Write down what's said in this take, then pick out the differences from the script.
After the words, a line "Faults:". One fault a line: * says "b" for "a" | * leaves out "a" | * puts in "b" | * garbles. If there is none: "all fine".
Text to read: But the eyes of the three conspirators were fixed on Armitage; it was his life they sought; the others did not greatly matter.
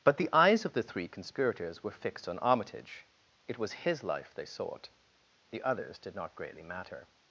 But the eyes of the three conspirators were fixed on Armitage; it was his life they sought; the others did not greatly matter.
Faults:
all fine